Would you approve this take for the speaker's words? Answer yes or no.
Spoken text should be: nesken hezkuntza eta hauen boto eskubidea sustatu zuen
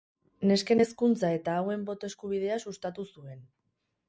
yes